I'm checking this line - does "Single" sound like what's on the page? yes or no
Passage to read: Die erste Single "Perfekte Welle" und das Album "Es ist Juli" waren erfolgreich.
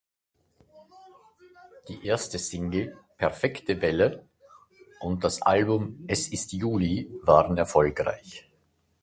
yes